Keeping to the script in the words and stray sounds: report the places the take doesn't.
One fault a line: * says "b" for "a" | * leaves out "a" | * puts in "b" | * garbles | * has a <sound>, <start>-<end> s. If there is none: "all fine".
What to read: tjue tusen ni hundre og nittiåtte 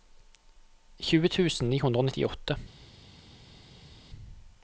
all fine